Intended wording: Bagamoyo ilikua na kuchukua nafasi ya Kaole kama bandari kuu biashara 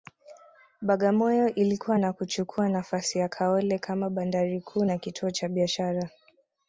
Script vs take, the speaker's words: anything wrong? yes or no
yes